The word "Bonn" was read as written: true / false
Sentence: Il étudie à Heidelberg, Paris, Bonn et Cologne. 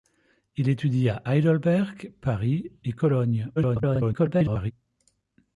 false